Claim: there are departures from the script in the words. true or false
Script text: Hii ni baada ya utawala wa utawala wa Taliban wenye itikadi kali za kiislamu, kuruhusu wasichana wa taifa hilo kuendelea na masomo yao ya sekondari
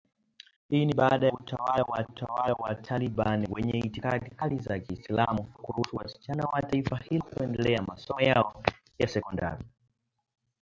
false